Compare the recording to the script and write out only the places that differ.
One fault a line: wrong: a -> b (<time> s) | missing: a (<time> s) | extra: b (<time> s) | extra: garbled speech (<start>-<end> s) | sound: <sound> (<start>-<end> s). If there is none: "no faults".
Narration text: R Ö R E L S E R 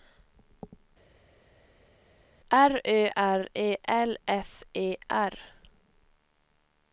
no faults